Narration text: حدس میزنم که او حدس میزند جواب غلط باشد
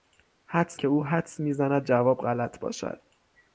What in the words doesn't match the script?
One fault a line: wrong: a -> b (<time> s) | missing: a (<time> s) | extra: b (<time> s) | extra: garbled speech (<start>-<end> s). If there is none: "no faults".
missing: میزنم (0.8 s)